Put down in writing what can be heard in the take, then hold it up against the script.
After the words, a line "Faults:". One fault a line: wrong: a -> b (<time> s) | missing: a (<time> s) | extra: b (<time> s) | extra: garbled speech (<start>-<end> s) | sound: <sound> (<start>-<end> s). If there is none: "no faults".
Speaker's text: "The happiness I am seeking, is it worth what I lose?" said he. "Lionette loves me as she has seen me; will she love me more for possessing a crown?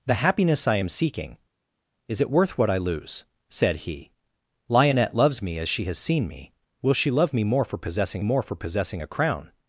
"The happiness I am seeking, is it worth what I lose?" said he. "Lionette loves me as she has seen me; will she love me more for possessing more for possessing a crown?
Faults:
extra: more for possessing (8.2 s)